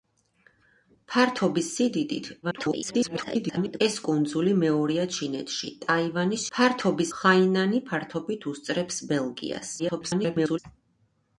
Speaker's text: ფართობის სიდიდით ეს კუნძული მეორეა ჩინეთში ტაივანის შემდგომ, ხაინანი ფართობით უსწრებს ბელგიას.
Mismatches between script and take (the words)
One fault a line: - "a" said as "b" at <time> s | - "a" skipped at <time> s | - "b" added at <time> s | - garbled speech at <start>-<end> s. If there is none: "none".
- garbled speech at 2.4-3.8 s
- "შემდგომ" said as "ფართობის" at 6.5 s
- garbled speech at 9.8-10.6 s